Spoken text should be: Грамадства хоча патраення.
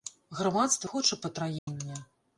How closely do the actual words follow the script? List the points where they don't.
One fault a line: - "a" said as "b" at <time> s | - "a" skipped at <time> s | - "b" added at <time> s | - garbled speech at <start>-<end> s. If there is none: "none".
none